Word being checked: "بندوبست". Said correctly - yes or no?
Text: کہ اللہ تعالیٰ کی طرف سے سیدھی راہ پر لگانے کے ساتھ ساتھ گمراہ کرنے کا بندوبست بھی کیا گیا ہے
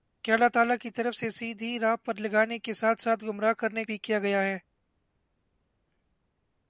no